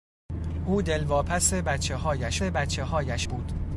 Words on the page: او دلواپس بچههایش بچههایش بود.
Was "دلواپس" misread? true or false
false